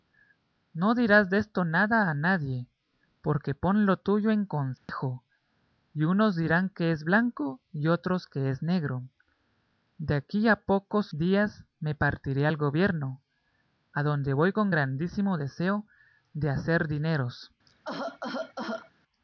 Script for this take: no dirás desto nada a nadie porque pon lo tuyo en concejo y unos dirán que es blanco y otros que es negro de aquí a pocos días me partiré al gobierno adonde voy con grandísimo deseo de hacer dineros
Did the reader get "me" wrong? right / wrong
right